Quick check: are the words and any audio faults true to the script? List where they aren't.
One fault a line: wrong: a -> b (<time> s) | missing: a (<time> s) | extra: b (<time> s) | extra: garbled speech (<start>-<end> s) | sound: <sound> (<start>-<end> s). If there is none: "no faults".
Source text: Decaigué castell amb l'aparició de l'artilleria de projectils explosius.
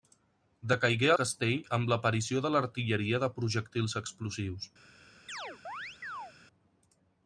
sound: chirp (5.3-6.3 s)